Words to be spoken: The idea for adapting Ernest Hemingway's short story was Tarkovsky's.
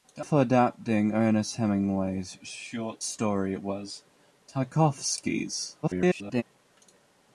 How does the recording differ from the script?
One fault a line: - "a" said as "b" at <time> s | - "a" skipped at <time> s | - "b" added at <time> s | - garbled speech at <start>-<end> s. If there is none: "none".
- "idea" skipped at 0.2 s
- garbled speech at 5.8-6.4 s